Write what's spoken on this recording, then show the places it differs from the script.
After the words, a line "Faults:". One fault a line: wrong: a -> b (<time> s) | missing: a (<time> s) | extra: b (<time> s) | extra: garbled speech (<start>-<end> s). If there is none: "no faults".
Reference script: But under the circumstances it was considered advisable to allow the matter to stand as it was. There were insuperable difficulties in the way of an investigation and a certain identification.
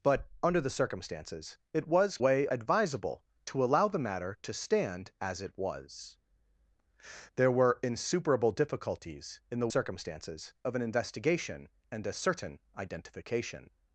But under the circumstances it was way advisable to allow the matter to stand as it was. There were insuperable difficulties in the circumstances of an investigation and a certain identification.
Faults:
wrong: considered -> way (2.2 s)
wrong: way -> circumstances (9.7 s)